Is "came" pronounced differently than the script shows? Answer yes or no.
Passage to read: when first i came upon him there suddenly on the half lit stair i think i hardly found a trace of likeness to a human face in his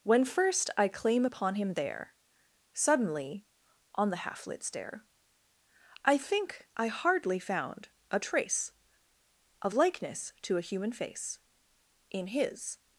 yes